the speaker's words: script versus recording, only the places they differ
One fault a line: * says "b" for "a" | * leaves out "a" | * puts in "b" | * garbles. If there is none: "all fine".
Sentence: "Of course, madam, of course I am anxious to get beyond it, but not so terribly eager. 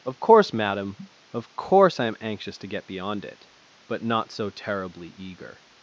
all fine